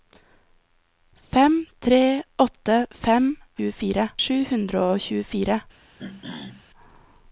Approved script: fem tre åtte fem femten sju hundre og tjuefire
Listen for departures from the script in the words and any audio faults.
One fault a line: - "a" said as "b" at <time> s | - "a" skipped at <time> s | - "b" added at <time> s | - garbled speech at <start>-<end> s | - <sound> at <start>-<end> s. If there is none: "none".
- "femten" said as "tjuefire" at 3.6 s
- throat clearing at 6.0-6.7 s